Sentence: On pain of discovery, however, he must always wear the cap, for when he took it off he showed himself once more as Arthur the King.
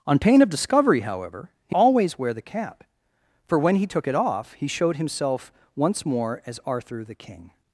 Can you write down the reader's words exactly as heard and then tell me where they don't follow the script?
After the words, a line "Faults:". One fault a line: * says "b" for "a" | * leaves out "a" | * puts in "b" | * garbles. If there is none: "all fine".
On pain of discovery, however, he always wear the cap, for when he took it off he showed himself once more as Arthur the King.
Faults:
* leaves out "must"